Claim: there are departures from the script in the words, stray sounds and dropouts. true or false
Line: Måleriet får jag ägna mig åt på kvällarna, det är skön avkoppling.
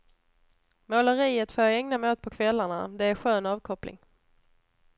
false